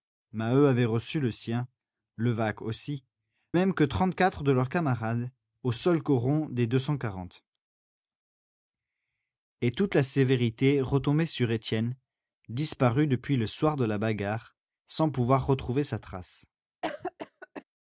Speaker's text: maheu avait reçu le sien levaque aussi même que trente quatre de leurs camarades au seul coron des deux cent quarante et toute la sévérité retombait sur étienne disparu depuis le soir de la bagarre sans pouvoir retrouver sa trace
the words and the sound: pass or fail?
fail